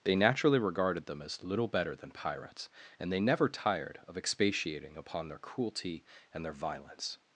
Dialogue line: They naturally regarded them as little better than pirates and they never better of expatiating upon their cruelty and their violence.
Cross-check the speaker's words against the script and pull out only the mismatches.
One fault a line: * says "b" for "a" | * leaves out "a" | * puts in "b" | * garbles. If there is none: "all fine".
* says "tired" for "better"